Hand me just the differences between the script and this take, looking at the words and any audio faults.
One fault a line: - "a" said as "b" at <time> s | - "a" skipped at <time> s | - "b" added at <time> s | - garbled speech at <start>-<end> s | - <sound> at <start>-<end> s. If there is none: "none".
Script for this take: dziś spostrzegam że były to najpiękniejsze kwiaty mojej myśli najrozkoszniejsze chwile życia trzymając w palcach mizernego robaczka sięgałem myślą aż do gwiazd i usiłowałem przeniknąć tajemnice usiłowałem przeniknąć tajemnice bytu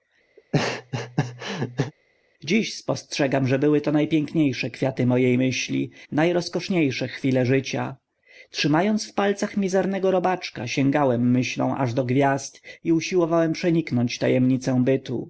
- laugh at 0.4-1.9 s
- "usiłowałem przeniknąć tajemnice" skipped at 14.8 s